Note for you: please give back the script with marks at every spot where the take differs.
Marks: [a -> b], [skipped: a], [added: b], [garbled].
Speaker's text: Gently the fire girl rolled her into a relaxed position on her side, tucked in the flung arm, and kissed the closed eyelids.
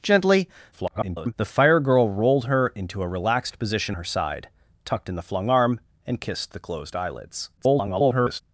Gently [garbled] the fire girl rolled her into a relaxed position [skipped: on] her side, tucked in the flung arm, and kissed the closed eyelids. [garbled]